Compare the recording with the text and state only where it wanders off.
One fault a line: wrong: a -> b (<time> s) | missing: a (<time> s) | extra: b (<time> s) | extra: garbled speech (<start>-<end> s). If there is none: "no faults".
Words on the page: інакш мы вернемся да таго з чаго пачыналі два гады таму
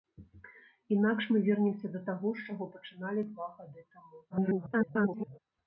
extra: garbled speech (4.3-5.4 s)